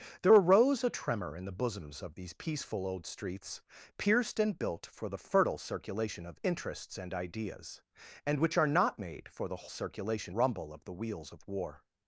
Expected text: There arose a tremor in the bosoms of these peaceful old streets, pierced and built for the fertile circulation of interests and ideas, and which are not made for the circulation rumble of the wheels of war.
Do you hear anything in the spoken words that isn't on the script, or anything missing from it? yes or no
no